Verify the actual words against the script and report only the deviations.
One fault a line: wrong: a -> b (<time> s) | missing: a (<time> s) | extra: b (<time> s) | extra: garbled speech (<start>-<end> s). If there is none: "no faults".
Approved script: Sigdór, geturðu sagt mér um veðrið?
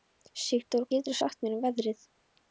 no faults